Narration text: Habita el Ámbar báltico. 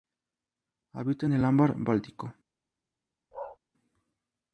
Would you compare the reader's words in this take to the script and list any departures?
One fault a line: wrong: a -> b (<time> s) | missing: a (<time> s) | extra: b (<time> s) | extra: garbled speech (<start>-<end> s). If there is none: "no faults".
extra: en (1.2 s)